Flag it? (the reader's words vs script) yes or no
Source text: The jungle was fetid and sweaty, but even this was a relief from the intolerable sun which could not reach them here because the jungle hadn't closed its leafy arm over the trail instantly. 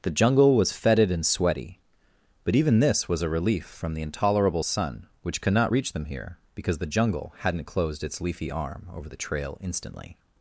no